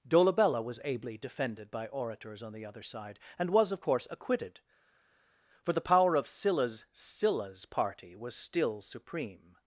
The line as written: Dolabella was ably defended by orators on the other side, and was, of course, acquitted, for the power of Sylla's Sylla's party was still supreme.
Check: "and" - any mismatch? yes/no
no